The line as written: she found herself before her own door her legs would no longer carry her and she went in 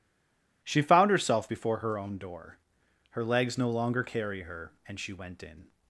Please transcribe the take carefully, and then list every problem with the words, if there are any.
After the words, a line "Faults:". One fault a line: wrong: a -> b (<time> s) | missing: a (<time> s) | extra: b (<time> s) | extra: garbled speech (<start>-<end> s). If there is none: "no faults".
she found herself before her own door her legs no longer carry her and she went in
Faults:
missing: would (3.6 s)